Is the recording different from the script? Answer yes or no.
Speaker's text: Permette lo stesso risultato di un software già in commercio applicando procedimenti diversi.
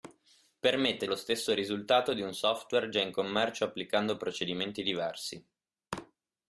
no